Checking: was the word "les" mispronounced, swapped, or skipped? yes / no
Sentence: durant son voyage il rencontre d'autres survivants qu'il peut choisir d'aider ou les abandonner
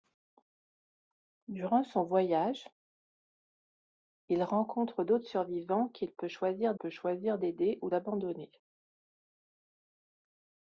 yes